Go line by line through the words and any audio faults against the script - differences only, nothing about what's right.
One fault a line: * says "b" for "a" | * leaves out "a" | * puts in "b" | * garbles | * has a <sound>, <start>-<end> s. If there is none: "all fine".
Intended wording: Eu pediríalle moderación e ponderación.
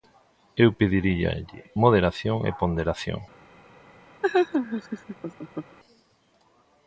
* has a laugh, 4.2-5.8 s